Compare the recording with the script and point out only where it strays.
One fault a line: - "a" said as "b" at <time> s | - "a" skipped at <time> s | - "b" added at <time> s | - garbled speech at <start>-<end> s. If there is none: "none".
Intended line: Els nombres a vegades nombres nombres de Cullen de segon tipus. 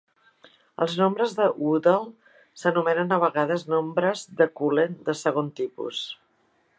- "de Woodall s'anomenen" added at 1.4 s
- "nombres" skipped at 4.3 s